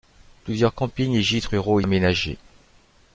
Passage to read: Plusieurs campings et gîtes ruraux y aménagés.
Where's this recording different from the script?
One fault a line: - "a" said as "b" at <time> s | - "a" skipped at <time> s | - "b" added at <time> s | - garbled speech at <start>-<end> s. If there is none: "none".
none